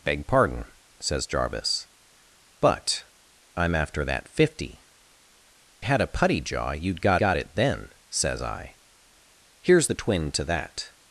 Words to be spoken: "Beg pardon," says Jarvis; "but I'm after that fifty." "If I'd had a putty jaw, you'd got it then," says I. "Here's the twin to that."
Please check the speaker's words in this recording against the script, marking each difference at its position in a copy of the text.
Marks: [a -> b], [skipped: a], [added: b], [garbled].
"Beg pardon," says Jarvis; "but I'm after that fifty." [skipped: "If I'd] had a putty jaw, you'd got [added: got] it then," says I. "Here's the twin to that."